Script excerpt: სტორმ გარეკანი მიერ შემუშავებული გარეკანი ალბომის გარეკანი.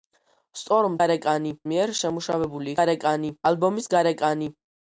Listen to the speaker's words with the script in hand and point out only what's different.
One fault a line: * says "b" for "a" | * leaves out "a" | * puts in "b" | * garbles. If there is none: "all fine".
all fine